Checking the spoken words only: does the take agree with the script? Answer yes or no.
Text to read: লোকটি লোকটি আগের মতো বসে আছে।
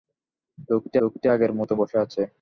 yes